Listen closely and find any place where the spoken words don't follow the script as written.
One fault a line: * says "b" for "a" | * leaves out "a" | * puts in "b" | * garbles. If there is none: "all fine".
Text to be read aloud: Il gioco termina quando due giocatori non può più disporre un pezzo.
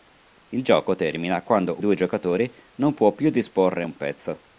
all fine